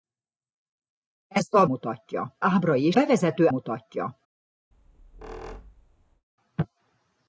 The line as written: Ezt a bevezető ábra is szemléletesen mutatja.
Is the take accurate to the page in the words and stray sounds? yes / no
no